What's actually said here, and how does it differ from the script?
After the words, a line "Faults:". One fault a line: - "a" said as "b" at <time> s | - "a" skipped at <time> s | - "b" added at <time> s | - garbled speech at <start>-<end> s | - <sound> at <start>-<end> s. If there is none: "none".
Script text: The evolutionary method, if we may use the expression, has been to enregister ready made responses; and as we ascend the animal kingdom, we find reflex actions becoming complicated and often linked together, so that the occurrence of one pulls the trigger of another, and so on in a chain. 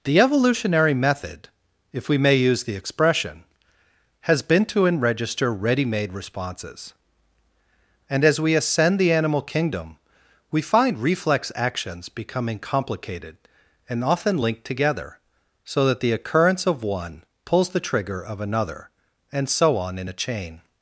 The evolutionary method, if we may use the expression, has been to enregister ready made responses; and as we ascend the animal kingdom, we find reflex actions becoming complicated and often linked together, so that the occurrence of one pulls the trigger of another, and so on in a chain.
Faults:
none